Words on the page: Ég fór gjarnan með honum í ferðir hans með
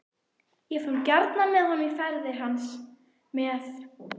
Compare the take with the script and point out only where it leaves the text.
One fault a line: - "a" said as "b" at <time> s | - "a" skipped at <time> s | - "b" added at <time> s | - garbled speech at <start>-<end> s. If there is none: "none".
none